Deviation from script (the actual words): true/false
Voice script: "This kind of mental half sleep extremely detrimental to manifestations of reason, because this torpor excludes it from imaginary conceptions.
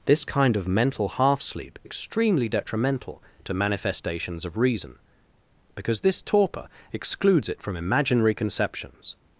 false